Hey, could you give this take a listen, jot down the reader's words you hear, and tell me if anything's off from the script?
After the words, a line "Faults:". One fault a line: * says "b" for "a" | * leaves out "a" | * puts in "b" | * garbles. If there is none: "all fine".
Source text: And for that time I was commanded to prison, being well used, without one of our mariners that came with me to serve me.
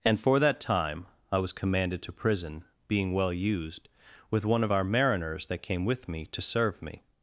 And for that time I was commanded to prison, being well used, with one of our mariners that came with me to serve me.
Faults:
* says "with" for "without"